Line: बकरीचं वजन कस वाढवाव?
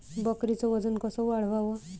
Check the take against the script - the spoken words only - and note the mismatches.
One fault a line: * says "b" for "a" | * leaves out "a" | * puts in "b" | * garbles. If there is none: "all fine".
all fine